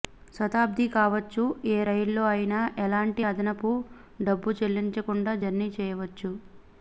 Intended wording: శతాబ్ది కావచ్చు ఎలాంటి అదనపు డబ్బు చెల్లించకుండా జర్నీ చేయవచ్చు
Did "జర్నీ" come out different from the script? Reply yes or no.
no